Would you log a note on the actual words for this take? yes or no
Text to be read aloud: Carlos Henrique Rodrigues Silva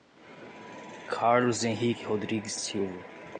no